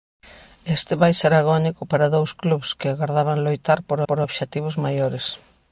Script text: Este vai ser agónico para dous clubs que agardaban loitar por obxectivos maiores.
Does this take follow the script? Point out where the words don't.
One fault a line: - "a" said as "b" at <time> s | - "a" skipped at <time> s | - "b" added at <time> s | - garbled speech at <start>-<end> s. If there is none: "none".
- "por" added at 4.1 s